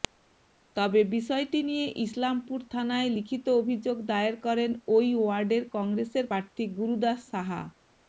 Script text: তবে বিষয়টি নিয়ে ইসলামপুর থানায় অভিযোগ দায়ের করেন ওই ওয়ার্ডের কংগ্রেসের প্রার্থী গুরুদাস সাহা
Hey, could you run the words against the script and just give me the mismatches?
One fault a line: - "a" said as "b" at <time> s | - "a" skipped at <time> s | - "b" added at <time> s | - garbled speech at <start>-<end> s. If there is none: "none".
- "লিখিত" added at 3.2 s